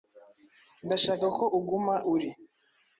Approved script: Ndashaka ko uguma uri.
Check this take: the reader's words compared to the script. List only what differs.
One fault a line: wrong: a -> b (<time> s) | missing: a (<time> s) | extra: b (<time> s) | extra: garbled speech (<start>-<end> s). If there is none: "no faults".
no faults